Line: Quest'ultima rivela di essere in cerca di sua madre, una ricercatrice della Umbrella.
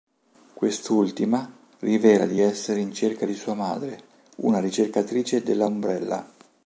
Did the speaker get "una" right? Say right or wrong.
right